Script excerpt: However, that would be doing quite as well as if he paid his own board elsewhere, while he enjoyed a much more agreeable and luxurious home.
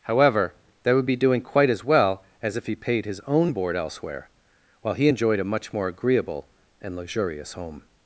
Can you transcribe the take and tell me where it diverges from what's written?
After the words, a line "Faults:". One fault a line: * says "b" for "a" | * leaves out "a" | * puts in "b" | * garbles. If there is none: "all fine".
However, that would be doing quite as well as if he paid his own board elsewhere, while he enjoyed a much more agreeable and luxurious home.
Faults:
all fine